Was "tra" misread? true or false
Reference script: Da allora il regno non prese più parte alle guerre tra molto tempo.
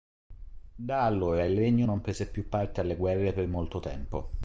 true